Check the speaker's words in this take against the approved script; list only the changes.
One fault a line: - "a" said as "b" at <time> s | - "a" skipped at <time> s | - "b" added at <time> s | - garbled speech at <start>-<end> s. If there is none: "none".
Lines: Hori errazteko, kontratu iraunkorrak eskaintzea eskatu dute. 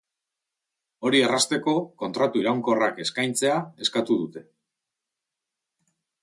none